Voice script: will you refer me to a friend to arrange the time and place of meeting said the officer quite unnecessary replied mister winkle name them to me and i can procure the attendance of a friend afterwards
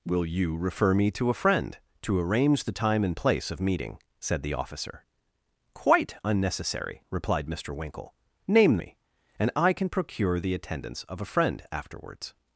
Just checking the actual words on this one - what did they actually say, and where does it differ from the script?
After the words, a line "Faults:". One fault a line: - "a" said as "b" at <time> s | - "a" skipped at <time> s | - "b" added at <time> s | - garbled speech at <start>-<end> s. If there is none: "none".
will you refer me to a friend to arrange the time and place of meeting said the officer quite unnecessary replied mister winkle name me and i can procure the attendance of a friend afterwards
Faults:
- "them to" skipped at 8.8 s